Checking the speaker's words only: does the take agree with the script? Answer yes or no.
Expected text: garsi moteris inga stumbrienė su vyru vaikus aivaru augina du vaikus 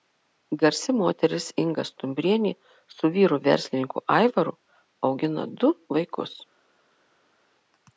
no